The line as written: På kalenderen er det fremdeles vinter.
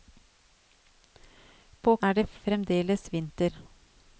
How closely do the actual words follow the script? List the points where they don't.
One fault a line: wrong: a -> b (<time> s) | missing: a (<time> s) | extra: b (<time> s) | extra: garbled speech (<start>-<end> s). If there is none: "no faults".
missing: kalenderen (2.0 s)